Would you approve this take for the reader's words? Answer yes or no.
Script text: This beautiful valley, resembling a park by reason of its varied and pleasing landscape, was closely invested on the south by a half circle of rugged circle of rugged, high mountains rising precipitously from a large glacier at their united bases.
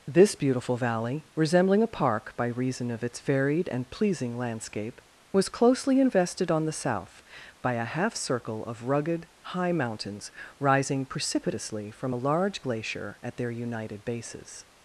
no